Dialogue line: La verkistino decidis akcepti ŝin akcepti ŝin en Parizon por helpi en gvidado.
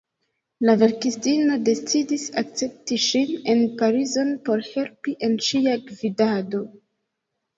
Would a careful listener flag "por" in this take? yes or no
no